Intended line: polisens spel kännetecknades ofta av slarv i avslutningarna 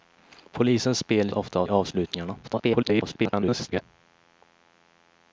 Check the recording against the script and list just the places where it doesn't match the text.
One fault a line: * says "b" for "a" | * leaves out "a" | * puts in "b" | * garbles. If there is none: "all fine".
* leaves out "kännetecknades"
* leaves out "slarv"
* garbles